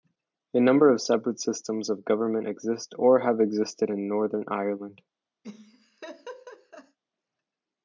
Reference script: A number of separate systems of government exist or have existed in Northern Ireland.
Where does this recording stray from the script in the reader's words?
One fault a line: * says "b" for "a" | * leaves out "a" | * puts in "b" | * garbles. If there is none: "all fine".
all fine